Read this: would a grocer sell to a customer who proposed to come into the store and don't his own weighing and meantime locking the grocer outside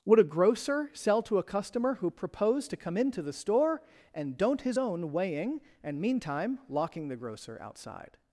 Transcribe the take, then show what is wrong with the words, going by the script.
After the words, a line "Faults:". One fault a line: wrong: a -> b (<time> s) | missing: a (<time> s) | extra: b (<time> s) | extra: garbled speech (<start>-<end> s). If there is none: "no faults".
would a grocer sell to a customer who proposed to come into the store and don't his own weighing and meantime locking the grocer outside
Faults:
no faults